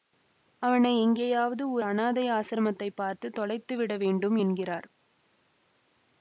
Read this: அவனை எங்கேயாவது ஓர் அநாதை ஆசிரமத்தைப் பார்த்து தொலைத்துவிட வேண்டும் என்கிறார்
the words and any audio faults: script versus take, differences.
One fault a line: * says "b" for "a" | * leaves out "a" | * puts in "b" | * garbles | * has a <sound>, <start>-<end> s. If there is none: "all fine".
all fine